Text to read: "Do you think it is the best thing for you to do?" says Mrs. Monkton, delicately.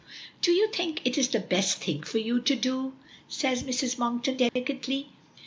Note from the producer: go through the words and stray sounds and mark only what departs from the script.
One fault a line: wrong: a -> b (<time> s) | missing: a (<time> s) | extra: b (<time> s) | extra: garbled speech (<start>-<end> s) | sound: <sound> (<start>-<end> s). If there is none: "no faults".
sound: dropout (4.5-4.6 s)